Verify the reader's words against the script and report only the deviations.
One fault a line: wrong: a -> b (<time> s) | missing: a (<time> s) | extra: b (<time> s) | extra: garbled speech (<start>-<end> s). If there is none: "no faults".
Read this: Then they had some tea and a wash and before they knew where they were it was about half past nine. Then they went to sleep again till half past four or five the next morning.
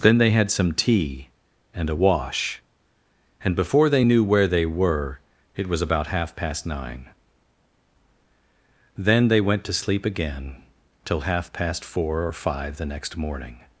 no faults